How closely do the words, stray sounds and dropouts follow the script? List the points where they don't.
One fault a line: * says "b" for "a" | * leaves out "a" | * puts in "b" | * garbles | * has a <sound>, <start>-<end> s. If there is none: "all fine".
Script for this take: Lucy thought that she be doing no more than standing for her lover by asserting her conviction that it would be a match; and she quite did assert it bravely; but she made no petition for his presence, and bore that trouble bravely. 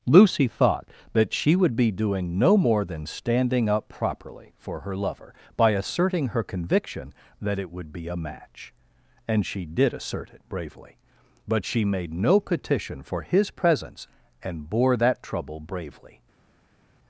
* puts in "would"
* puts in "up properly"
* leaves out "quite"